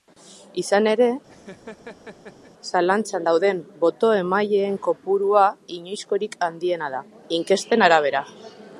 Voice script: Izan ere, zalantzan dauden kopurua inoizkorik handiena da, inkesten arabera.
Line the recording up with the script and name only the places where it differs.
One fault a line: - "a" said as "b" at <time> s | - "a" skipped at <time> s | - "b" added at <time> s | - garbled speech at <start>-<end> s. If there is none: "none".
- "boto emaileen" added at 3.8 s